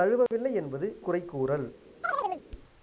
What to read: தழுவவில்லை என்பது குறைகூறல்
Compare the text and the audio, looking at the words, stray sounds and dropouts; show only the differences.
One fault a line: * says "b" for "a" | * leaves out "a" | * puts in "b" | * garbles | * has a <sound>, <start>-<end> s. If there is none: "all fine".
* has a dropout, 0.3-0.3 s
* has a chirp, 2.0-2.4 s